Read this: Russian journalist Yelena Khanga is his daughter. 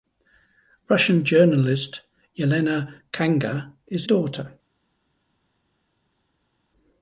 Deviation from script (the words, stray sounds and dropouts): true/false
true